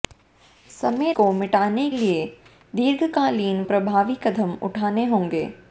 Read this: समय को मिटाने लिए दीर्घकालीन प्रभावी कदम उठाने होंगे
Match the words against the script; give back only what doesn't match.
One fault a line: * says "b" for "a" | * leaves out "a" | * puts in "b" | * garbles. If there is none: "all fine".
all fine